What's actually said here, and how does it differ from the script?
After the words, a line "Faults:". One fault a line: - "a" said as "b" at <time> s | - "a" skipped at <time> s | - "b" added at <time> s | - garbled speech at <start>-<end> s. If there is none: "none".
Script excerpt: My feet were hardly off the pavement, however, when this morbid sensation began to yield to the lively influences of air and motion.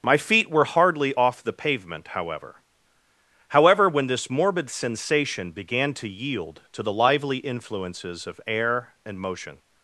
My feet were hardly off the pavement, however however, when this morbid sensation began to yield to the lively influences of air and motion.
Faults:
- "however" added at 3.5 s